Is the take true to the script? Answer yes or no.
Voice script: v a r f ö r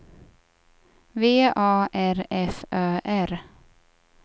yes